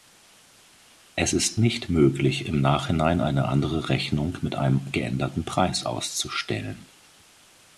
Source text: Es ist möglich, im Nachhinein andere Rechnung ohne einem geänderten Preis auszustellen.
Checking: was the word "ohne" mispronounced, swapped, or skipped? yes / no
yes